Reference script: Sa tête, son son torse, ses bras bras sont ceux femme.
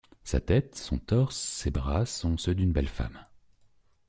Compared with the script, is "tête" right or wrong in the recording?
right